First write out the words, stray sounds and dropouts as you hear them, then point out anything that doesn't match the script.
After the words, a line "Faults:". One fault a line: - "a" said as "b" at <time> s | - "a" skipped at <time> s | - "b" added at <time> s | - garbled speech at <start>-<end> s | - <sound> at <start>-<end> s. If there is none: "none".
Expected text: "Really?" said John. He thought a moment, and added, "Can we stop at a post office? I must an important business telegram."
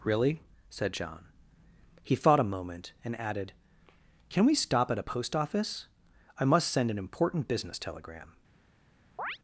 "Really?" said John. He thought a moment, and added, "Can we stop at a post office? I must send an important business telegram."
Faults:
- "send" added at 6.7 s
- chirp at 9.2-9.4 s